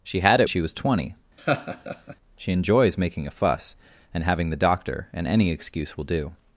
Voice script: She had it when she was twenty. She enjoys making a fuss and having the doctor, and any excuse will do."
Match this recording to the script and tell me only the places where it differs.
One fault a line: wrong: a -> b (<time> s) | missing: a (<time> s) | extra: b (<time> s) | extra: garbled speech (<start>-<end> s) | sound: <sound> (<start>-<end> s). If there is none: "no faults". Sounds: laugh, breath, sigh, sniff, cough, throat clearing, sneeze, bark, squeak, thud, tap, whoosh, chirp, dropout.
missing: when (0.5 s)
sound: laugh (1.4-2.2 s)